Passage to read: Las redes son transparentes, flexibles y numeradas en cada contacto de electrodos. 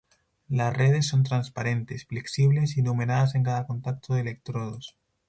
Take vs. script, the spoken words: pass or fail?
pass